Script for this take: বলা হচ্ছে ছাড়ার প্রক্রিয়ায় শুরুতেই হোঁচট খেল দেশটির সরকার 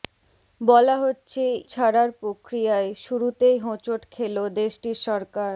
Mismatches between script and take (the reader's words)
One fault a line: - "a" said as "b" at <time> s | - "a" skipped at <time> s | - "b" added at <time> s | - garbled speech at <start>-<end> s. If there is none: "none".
none